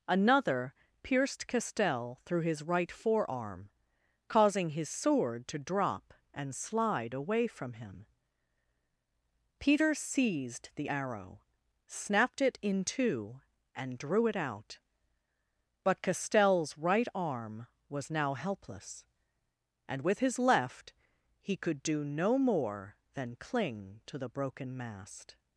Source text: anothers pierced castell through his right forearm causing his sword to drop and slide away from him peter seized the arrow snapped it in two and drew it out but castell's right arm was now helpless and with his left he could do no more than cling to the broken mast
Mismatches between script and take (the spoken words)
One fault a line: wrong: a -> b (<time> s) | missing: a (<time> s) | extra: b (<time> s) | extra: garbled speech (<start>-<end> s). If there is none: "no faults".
wrong: anothers -> another (0.1 s)